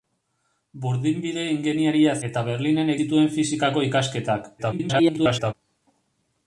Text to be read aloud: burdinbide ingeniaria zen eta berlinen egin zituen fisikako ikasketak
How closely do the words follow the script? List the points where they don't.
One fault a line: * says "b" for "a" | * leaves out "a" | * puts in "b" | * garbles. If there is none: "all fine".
* leaves out "zen"
* leaves out "egin"
* garbles